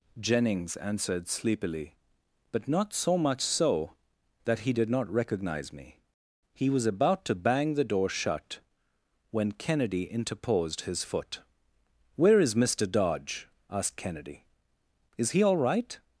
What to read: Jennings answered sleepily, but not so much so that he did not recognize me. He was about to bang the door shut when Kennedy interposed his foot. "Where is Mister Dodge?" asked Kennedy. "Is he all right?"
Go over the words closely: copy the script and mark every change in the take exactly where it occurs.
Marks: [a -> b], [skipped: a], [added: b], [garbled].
Jennings answered sleepily, but not so much so that he did not recognize me. He was about to bang the door shut when Kennedy interposed his foot. "Where is Mister Dodge?" asked Kennedy. "Is he all right?"